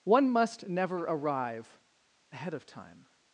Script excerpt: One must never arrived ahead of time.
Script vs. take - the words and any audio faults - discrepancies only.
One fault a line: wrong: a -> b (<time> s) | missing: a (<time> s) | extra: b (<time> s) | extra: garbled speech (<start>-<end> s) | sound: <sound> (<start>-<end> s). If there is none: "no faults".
wrong: arrived -> arrive (1.0 s)